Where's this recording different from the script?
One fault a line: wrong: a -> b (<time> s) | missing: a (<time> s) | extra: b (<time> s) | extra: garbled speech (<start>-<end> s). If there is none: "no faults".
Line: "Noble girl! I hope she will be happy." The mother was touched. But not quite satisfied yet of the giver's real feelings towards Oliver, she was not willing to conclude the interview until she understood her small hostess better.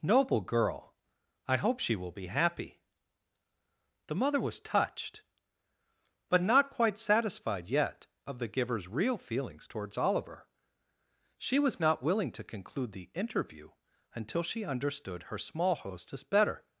no faults